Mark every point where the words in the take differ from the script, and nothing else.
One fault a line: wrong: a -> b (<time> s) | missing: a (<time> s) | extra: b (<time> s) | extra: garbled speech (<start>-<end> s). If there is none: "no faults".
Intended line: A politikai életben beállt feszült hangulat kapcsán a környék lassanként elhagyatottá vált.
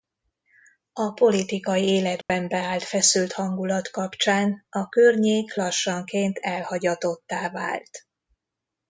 no faults